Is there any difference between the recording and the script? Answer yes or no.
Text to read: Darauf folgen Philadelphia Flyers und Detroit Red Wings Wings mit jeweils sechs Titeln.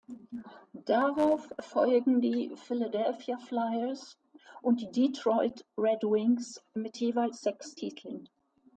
yes